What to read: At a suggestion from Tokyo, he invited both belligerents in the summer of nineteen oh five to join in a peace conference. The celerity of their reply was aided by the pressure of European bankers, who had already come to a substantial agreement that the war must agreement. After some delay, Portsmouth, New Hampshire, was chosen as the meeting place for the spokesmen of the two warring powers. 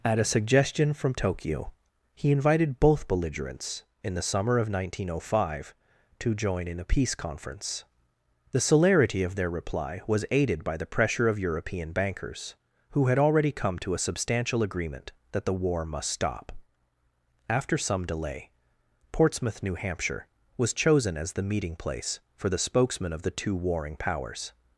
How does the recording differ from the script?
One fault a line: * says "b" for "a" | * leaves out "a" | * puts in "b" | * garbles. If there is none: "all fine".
* says "stop" for "agreement"